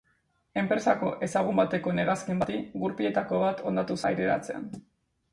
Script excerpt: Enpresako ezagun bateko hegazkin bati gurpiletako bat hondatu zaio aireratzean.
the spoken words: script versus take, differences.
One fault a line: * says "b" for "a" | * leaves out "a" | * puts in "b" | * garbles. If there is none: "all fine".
* leaves out "zaio"